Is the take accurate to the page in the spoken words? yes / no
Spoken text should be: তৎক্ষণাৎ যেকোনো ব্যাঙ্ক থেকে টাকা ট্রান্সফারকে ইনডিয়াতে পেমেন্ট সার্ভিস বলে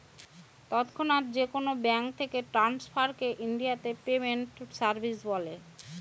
no